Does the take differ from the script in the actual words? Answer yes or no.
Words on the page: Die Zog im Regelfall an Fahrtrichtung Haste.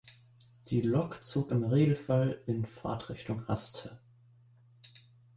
yes